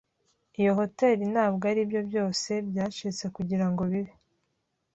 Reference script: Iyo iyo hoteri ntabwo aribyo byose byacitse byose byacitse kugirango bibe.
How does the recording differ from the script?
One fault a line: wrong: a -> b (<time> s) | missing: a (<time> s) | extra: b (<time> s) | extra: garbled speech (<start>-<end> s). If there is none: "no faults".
missing: iyo (0.7 s)
missing: byose byacitse (3.2 s)